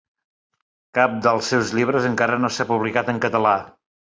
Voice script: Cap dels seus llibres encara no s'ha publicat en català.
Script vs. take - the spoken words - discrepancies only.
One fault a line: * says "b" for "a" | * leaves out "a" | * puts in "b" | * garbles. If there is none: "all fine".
all fine